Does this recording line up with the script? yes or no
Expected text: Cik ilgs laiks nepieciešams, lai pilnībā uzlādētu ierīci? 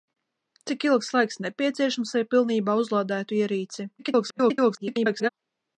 no